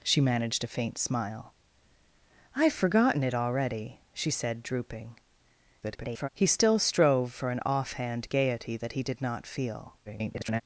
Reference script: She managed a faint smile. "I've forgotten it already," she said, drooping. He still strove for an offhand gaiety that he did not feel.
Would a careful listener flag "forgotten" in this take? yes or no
no